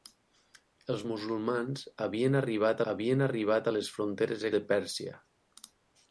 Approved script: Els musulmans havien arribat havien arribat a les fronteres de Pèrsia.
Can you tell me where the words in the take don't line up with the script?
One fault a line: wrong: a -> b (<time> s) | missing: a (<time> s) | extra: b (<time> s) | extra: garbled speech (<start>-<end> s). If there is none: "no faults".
no faults